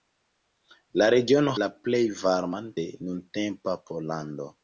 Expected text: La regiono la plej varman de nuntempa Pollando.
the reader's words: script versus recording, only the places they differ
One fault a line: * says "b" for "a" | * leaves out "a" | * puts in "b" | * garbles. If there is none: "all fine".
all fine